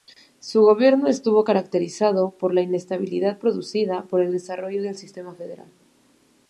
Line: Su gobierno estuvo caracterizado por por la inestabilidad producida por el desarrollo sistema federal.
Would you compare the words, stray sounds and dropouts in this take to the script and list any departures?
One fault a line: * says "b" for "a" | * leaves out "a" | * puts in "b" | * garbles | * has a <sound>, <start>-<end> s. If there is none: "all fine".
* leaves out "por"
* puts in "del"